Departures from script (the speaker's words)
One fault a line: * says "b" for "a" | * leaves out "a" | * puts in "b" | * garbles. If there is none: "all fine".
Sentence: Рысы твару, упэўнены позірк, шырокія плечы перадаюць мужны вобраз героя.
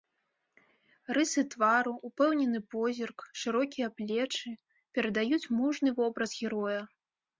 all fine